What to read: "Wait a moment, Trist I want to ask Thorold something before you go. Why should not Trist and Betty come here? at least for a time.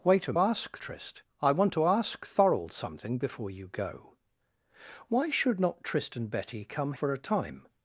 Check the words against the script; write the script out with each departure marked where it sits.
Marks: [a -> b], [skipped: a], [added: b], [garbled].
"Wait a [moment, -> ask] Trist I want to ask Thorold something before you go. Why should not Trist and Betty come [skipped: here? at least] for a time.